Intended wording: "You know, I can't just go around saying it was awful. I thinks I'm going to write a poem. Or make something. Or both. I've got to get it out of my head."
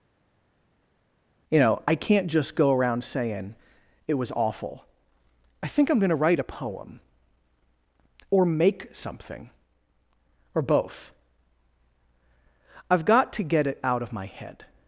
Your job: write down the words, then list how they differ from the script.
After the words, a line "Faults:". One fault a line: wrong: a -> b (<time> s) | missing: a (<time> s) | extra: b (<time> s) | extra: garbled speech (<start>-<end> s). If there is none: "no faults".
"You know, I can't just go around saying it was awful. I think I'm going to write a poem. Or make something. Or both. I've got to get it out of my head."
Faults:
wrong: thinks -> think (5.7 s)